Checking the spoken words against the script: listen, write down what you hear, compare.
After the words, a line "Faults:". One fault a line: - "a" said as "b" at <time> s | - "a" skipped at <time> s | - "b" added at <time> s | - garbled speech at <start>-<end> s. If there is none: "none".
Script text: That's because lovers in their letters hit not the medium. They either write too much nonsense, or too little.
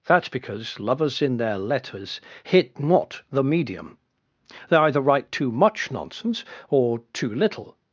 That's because lovers in their letters hit not the medium. They either write too much nonsense, or too little.
Faults:
none